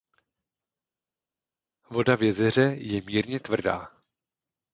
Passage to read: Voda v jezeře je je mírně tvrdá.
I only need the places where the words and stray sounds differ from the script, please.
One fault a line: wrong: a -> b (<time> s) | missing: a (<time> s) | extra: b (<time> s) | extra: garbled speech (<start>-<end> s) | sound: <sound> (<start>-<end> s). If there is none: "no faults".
missing: je (3.0 s)